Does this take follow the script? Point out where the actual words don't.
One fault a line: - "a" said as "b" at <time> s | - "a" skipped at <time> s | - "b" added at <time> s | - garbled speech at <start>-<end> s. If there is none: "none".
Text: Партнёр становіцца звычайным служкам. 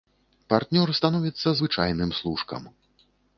none